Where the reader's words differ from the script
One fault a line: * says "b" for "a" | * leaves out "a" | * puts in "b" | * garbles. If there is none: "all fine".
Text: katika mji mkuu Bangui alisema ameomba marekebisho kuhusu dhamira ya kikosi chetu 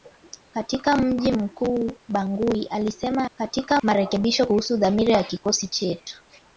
* says "katika" for "ameomba"